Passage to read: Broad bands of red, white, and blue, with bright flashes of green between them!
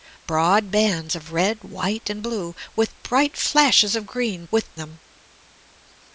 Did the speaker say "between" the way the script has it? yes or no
no